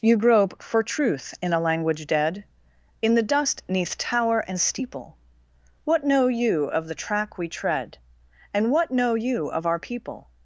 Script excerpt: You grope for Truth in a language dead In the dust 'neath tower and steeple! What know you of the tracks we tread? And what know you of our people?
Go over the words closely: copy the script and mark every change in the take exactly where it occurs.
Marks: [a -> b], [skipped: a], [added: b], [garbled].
You grope for Truth in a language dead In the dust 'neath tower and steeple! What know you of the [tracks -> track] we tread? And what know you of our people?